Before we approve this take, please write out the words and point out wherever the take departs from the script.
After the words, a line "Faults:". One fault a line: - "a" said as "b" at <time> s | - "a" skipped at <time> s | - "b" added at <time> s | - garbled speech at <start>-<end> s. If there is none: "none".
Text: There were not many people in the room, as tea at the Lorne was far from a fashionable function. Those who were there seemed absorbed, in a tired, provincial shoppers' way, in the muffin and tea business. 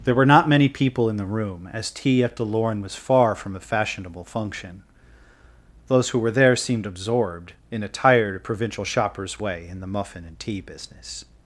There were not many people in the room, as tea at the Lorne was far from a fashionable function. Those who were there seemed absorbed, in a tired, provincial shoppers' way, in the muffin and tea business.
Faults:
none